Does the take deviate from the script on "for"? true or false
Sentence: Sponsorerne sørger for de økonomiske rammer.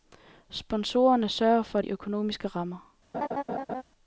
false